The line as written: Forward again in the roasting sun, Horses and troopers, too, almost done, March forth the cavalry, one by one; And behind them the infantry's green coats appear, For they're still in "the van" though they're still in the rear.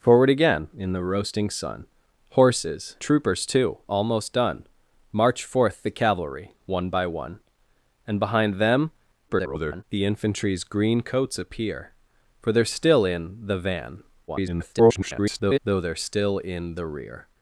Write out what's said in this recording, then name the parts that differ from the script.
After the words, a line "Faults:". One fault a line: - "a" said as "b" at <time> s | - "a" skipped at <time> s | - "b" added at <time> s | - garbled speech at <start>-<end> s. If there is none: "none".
Forward again in the roasting sun, Horses troopers, too, almost done, March forth the cavalry, one by one; And behind them [garbled] the infantry's green coats appear, For they're still in "the van" [garbled] though they're still in the rear.
Faults:
- "and" skipped at 3.0 s
- garbled speech at 9.3-9.8 s
- garbled speech at 14.3-15.6 s